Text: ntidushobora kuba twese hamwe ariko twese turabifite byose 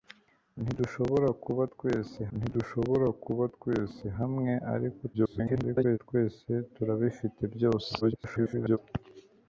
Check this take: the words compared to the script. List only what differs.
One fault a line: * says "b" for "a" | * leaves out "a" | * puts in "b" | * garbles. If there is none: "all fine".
* puts in "ntidushobora kuba twese"
* garbles
* garbles